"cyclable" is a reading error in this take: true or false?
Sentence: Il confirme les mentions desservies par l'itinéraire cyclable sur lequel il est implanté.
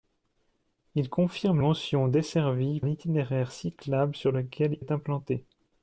false